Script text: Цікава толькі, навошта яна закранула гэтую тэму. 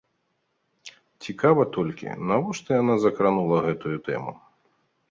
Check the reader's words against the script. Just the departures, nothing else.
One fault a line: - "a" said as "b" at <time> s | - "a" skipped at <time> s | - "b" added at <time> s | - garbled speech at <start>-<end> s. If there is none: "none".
none